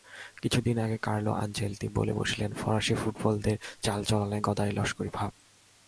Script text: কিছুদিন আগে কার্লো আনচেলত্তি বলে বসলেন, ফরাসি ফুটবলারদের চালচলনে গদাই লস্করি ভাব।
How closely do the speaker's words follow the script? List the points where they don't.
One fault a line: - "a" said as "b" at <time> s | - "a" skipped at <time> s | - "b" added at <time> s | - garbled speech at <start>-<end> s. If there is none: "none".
none